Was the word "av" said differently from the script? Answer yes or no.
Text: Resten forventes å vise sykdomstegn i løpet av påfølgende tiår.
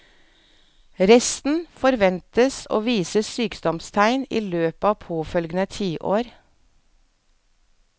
no